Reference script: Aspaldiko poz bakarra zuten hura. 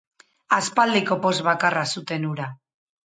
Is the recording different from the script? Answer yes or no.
no